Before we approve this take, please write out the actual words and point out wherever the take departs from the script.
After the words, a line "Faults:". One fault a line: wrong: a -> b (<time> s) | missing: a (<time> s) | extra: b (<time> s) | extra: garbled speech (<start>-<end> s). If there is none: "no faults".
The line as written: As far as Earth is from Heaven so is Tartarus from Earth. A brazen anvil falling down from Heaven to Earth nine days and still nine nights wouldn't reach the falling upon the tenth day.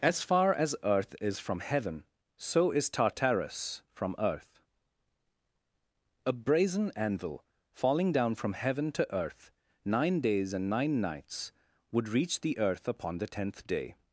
As far as Earth is from Heaven so is Tartarus from Earth. A brazen anvil falling down from Heaven to Earth nine days and nine nights would reach the earth upon the tenth day.
Faults:
missing: still (10.7 s)
wrong: wouldn't -> would (11.9 s)
wrong: falling -> earth (12.6 s)